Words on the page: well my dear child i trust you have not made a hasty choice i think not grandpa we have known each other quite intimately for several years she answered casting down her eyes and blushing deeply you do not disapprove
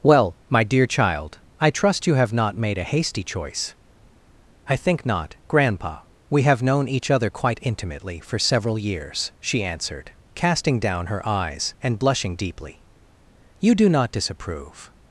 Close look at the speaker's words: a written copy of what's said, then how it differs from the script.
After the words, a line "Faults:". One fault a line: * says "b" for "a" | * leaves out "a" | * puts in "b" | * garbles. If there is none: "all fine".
well my dear child i trust you have not made a hasty choice i think not grandpa we have known each other quite intimately for several years she answered casting down her eyes and blushing deeply you do not disapprove
Faults:
all fine